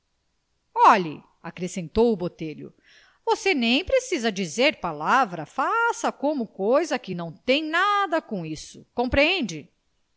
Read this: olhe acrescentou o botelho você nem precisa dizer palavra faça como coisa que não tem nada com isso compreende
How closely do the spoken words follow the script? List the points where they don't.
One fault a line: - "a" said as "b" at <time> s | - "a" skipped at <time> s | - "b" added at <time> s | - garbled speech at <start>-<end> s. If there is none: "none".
none